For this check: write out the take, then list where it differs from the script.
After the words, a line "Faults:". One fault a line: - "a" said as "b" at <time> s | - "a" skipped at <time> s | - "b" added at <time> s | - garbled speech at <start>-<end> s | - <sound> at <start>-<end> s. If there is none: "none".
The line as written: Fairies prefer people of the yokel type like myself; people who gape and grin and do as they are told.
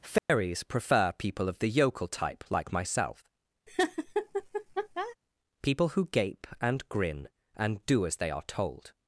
Fairies prefer people of the yokel type like myself; people who gape and grin and do as they are told.
Faults:
- dropout at 0.2-0.3 s
- laugh at 3.7-5.2 s